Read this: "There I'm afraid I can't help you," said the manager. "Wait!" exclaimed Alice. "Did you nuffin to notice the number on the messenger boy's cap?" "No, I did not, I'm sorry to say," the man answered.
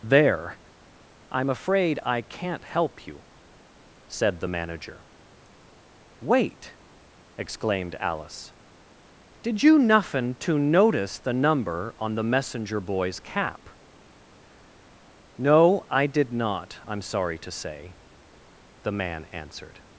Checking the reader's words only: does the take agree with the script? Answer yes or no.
yes